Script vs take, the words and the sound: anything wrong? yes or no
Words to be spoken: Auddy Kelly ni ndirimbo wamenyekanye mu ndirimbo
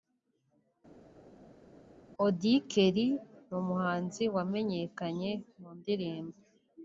yes